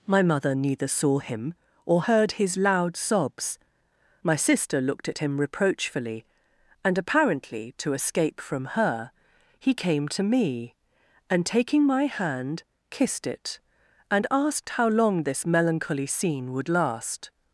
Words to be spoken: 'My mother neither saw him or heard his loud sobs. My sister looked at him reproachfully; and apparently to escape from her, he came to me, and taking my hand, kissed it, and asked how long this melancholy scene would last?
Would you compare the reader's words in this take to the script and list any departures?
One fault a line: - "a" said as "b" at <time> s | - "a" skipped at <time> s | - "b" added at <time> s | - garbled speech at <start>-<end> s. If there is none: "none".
none